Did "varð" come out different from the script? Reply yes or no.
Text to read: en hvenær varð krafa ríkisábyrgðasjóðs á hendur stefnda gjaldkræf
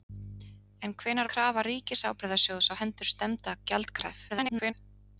yes